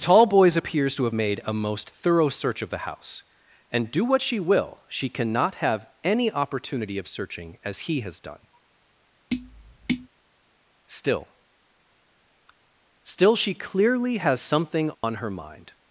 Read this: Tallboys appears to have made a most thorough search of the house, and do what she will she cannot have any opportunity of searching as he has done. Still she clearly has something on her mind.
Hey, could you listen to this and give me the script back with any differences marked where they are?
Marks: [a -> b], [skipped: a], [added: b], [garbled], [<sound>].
Tallboys appears to have made a most thorough search of the house, and do what she will she cannot have any opportunity of searching as he has done. [tap] Still [added: Still] she clearly has something on [dropout] her mind.